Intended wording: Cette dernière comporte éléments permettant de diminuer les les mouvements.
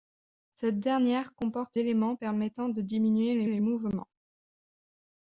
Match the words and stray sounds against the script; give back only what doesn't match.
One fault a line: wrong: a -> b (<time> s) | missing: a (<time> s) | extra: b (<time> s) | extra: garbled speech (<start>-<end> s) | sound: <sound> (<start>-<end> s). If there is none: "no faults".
no faults